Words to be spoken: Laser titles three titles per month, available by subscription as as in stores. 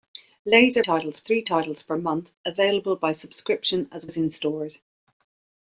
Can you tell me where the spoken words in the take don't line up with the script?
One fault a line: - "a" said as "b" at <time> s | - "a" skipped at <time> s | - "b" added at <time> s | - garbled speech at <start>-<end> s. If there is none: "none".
none